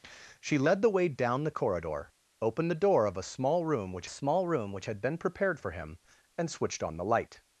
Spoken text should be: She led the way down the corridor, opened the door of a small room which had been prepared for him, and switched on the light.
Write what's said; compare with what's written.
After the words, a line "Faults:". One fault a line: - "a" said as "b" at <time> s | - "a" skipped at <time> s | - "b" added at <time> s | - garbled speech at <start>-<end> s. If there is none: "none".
She led the way down the corridor, opened the door of a small room which small room which had been prepared for him, and switched on the light.
Faults:
- "small room which" added at 4.1 s